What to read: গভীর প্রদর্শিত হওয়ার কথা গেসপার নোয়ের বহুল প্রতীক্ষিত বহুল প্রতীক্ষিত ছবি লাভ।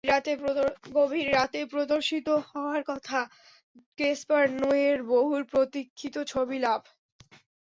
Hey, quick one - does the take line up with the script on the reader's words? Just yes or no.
no